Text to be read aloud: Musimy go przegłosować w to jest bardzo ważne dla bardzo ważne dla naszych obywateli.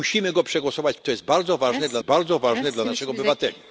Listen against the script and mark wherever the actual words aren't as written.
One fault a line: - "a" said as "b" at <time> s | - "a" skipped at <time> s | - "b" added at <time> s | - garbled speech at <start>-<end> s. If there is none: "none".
none